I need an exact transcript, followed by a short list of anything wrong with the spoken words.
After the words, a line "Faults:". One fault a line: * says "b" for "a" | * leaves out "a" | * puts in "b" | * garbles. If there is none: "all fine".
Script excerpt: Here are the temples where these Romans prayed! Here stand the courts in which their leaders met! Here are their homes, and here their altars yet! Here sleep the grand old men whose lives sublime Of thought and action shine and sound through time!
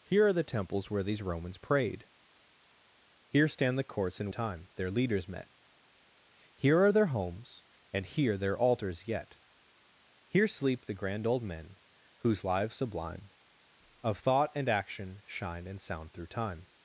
Here are the temples where these Romans prayed! Here stand the courts in time their leaders met! Here are their homes, and here their altars yet! Here sleep the grand old men whose lives sublime Of thought and action shine and sound through time!
Faults:
* says "time" for "which"